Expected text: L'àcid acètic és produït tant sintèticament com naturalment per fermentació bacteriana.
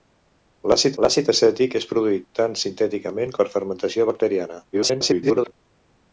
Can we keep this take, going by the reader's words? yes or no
no